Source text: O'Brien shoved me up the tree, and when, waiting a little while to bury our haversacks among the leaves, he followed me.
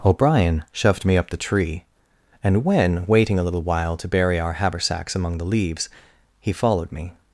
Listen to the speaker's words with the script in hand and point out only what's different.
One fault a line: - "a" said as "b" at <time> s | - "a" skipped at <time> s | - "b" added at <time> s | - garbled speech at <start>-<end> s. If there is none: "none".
none